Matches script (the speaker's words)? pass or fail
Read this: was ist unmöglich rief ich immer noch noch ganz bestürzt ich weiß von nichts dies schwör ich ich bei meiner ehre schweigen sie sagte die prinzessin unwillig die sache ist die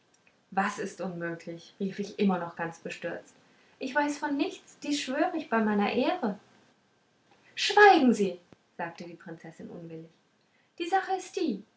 fail